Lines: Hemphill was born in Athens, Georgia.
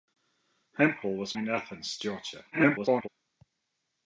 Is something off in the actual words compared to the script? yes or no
yes